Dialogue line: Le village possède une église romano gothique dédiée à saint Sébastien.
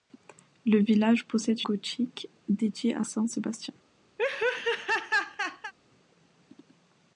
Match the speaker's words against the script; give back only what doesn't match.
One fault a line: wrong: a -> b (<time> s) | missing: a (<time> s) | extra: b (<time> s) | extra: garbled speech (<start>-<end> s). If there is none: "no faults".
missing: une église romano (1.6 s)